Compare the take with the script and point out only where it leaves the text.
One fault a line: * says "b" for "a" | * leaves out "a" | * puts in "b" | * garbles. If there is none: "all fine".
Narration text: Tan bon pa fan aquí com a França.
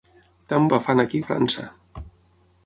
* leaves out "bon"
* leaves out "com"